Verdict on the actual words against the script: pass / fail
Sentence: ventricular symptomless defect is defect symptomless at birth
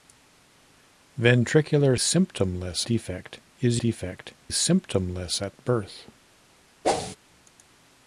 pass